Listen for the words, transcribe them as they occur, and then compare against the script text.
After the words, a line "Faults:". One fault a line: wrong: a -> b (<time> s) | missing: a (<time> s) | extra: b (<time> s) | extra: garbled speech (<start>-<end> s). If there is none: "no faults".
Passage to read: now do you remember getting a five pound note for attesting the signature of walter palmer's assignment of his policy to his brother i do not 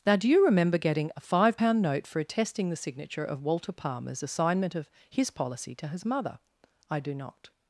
now do you remember getting a five pound note for attesting the signature of walter palmer's assignment of his policy to his mother i do not
Faults:
wrong: brother -> mother (6.0 s)